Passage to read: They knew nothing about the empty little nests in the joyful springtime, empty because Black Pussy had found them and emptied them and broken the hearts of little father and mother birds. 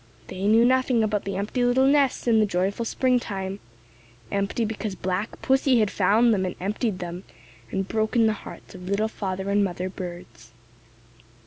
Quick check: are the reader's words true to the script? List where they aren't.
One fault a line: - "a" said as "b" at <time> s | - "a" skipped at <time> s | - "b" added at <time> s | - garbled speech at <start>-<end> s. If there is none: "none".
none